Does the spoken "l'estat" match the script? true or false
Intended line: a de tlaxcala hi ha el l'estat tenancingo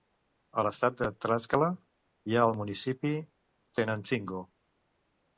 false